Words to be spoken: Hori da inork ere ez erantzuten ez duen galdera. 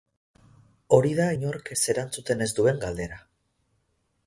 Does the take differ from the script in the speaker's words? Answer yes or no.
yes